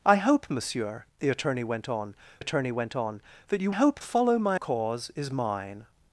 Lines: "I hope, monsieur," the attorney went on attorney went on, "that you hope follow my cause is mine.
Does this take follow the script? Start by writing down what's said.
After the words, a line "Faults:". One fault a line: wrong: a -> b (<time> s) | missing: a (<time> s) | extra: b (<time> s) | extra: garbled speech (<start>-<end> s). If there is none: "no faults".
"I hope, monsieur," the attorney went on attorney went on, "that you hope follow my cause is mine.
Faults:
no faults